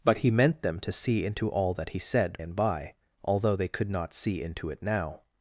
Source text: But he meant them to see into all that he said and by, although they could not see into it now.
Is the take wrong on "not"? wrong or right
right